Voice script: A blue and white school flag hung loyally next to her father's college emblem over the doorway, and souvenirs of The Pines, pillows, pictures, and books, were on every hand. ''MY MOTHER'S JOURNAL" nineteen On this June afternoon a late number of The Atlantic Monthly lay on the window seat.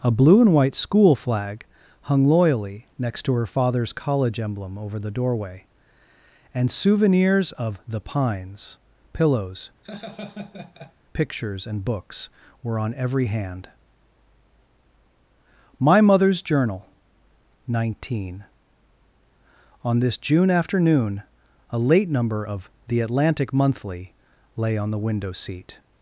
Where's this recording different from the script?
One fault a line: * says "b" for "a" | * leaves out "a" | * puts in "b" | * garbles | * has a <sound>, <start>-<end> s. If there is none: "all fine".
* has a laugh, 9.8-10.9 s